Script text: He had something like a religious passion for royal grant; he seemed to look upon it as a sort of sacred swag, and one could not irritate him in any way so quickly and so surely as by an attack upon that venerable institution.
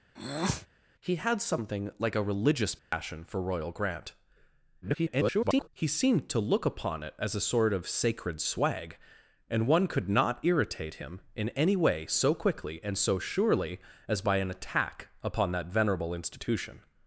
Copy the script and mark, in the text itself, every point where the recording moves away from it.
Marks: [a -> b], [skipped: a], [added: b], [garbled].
He had something like a religious passion for royal grant; [garbled] he seemed to look upon it as a sort of sacred swag, and one could not irritate him in any way so quickly and so surely as by an attack upon that venerable institution.